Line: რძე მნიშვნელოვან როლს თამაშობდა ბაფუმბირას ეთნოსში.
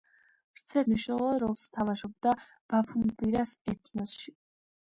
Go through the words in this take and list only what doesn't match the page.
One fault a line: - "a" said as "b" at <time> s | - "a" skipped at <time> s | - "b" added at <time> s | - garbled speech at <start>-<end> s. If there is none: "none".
none